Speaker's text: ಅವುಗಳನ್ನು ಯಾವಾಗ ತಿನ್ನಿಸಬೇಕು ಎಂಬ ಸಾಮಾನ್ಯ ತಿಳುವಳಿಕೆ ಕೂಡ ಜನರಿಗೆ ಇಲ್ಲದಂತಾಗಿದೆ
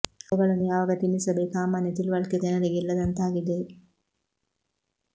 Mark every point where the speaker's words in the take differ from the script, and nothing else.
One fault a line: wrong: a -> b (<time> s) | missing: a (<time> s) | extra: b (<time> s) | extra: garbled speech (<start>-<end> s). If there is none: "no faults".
missing: ಎಂಬ (1.6 s)
missing: ಕೂಡ (2.4 s)